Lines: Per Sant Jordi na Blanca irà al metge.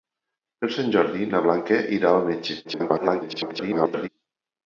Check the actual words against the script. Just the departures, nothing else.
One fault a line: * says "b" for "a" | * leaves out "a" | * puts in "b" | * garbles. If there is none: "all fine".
* garbles